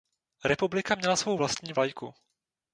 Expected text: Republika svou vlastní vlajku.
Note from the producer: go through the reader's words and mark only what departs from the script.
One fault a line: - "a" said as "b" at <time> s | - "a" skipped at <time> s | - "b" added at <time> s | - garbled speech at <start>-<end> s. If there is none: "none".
- "měla" added at 0.9 s